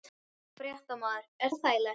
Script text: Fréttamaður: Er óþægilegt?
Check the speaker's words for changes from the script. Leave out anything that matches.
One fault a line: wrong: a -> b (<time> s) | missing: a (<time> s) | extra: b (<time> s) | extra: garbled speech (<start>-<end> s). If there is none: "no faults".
no faults